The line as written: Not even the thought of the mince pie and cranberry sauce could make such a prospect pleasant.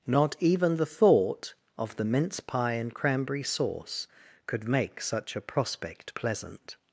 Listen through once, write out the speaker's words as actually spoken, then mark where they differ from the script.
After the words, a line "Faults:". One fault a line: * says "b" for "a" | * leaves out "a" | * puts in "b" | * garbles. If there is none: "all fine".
Not even the thought of the mince pie and cranberry sauce could make such a prospect pleasant.
Faults:
all fine